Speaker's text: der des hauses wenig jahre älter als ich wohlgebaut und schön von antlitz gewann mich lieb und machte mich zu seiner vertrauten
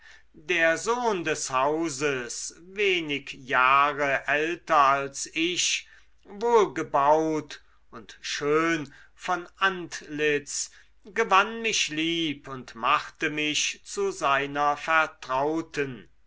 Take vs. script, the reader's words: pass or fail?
fail